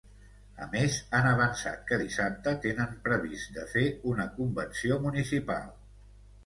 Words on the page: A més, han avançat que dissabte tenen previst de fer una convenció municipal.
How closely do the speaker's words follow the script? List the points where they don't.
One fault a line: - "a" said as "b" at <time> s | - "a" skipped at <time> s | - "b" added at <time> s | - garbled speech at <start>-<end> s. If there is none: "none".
none